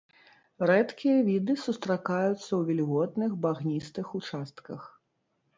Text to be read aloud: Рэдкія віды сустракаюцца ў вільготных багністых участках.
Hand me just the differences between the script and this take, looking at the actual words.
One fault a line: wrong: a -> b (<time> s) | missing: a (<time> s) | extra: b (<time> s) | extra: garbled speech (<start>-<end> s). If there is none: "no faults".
no faults